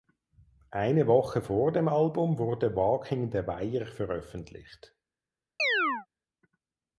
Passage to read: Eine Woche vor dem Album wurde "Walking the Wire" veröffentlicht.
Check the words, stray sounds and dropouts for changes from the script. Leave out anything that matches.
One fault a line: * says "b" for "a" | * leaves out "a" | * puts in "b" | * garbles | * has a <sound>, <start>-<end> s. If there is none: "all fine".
* has a chirp, 5.6-6.1 s